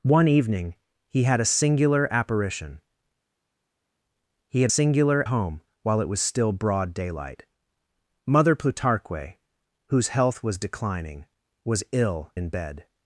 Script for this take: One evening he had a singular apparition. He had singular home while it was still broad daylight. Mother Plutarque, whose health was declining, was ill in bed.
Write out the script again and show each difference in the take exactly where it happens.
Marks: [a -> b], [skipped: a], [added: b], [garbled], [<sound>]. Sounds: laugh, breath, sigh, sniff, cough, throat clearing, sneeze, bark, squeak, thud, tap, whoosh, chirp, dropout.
One evening he had a singular apparition. He had singular home while it was still broad daylight. Mother Plutarque, whose health was declining, was ill in bed.